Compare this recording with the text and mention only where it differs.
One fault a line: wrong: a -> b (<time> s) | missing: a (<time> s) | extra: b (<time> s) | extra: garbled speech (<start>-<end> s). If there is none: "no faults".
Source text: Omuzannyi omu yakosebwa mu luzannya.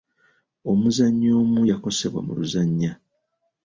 no faults